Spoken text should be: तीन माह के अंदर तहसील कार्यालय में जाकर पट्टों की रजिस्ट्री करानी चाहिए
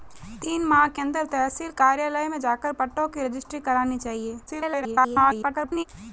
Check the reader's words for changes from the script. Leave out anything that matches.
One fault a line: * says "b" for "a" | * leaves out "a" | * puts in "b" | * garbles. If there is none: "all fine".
* garbles